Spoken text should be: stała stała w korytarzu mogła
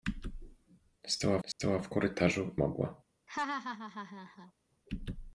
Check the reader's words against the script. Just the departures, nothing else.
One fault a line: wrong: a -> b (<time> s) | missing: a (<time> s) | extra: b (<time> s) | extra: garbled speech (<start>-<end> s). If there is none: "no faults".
no faults